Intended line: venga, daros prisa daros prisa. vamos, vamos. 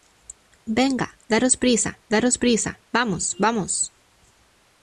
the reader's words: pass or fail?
pass